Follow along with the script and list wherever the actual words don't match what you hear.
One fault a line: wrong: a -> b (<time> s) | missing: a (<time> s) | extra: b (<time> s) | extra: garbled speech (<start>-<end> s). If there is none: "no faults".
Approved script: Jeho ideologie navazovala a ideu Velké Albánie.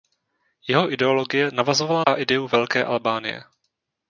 no faults